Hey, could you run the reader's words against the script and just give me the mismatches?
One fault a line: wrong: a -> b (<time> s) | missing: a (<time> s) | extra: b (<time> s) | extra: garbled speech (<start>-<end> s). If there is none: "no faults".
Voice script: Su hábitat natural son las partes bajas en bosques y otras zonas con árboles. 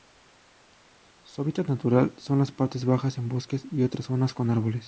no faults